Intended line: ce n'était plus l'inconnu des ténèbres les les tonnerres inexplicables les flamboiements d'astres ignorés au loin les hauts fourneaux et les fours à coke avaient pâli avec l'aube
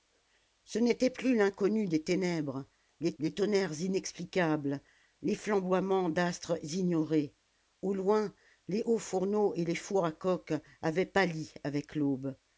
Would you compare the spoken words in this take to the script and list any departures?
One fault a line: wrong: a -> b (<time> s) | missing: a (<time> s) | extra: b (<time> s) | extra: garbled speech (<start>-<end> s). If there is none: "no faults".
no faults